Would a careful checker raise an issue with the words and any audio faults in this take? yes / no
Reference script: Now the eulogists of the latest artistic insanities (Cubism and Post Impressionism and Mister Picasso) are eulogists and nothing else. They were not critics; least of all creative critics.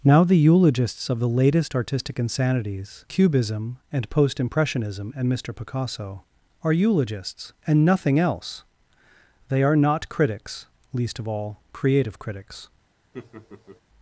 yes